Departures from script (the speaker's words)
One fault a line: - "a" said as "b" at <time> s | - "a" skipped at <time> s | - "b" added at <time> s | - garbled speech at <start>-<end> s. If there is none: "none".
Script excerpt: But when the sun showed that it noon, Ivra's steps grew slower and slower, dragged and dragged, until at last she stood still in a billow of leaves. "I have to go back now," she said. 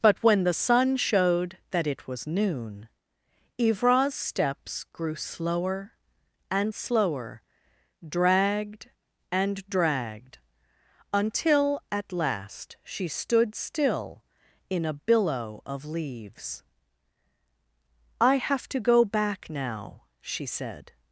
- "was" added at 2.1 s